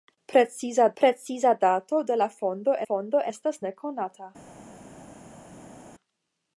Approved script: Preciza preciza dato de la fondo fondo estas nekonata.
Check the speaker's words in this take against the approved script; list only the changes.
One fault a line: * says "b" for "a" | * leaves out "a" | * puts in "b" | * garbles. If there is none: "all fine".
all fine